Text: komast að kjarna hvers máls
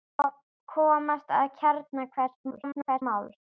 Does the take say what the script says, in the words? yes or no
no